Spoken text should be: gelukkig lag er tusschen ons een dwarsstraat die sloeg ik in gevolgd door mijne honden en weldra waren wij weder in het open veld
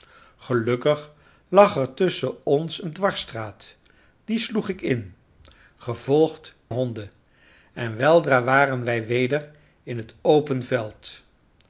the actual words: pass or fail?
fail